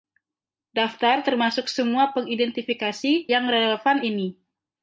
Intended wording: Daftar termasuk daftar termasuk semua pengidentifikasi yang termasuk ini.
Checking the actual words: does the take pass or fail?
fail